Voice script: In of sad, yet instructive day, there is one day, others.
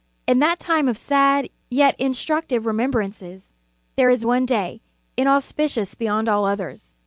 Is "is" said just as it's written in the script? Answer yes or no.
yes